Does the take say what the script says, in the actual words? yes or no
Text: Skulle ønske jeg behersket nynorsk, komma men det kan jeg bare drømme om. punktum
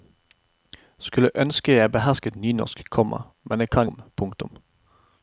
no